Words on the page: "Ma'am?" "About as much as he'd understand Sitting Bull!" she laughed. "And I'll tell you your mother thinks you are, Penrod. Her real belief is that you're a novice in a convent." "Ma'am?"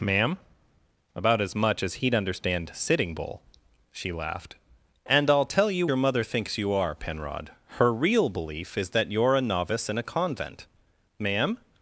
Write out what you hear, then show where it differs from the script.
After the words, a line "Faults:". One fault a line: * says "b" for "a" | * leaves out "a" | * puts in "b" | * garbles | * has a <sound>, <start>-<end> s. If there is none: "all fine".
"Ma'am?" "About as much as he'd understand Sitting Bull!" she laughed. "And I'll tell you your mother thinks you are, Penrod. Her real belief is that you're a novice in a convent." "Ma'am?"
Faults:
all fine